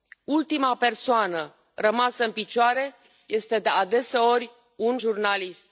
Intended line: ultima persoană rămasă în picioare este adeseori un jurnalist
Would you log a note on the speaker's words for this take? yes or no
no